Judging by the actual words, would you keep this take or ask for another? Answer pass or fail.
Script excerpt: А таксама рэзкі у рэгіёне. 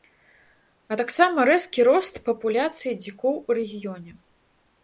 fail